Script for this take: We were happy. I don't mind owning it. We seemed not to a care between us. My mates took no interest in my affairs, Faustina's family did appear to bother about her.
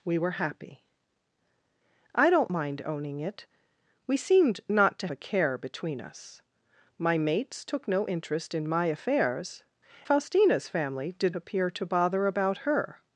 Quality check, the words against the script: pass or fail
pass